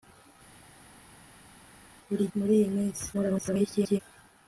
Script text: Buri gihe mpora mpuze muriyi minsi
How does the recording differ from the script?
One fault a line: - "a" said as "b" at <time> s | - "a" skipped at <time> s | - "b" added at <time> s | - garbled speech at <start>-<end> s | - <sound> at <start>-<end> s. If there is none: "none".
- "gihe mpora mpuze" skipped at 2.2 s
- garbled speech at 3.1-4.0 s